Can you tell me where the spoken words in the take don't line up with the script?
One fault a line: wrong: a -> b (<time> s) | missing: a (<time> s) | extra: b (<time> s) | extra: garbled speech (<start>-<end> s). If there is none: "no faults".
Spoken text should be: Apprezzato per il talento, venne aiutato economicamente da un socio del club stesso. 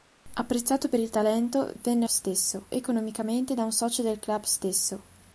wrong: aiutato -> stesso (2.1 s)